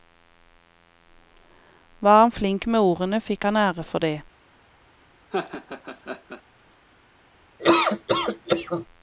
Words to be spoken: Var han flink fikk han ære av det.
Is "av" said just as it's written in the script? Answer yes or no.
no